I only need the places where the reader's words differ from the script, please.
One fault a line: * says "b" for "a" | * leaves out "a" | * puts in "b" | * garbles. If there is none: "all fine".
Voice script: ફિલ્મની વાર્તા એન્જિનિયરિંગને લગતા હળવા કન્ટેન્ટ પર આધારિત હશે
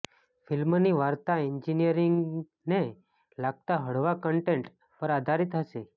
all fine